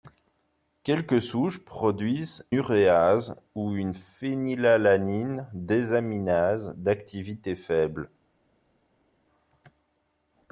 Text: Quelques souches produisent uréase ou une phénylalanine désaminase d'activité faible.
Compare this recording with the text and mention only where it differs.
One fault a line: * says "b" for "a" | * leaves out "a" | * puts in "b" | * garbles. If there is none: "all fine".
all fine